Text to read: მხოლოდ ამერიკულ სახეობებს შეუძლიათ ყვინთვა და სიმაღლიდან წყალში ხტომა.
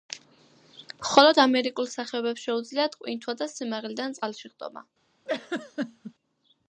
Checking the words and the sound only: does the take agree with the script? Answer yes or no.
no